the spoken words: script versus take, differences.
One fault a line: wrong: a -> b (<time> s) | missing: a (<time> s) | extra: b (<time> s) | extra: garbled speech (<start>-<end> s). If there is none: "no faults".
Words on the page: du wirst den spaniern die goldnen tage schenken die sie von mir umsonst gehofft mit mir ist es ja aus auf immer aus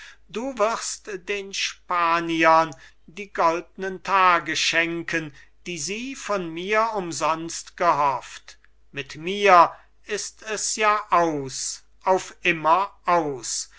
no faults